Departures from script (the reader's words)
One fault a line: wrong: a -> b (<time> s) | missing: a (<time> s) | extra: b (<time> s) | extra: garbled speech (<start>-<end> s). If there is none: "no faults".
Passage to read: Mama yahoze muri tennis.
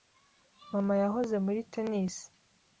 no faults